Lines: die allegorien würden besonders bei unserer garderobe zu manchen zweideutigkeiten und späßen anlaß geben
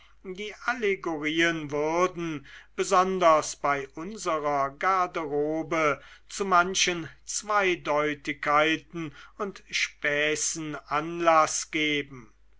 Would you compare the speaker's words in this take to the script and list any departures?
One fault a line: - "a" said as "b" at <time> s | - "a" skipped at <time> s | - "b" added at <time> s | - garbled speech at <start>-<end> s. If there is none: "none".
none